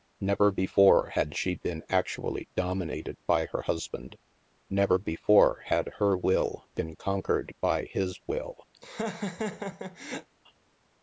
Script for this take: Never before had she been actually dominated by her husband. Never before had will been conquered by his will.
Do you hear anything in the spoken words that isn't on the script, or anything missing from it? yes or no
yes